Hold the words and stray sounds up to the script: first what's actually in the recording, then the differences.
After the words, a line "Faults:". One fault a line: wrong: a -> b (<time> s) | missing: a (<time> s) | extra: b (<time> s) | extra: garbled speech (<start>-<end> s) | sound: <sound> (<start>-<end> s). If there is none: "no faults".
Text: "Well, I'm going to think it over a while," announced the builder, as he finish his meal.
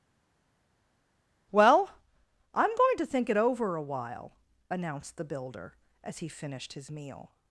"Well, I'm going to think it over a while," announced the builder, as he finished his meal.
Faults:
wrong: finish -> finished (6.3 s)